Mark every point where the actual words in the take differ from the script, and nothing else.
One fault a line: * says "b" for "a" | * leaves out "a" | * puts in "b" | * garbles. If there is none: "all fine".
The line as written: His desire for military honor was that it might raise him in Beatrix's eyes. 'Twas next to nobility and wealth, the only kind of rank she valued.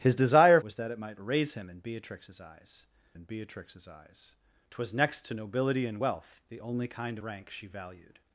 * leaves out "for military honor"
* puts in "in Beatrix's eyes"
* leaves out "of"